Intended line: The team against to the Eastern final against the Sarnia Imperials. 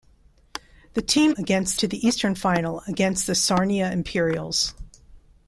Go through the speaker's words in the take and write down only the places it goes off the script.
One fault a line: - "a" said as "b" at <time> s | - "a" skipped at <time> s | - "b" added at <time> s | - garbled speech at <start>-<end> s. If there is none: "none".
none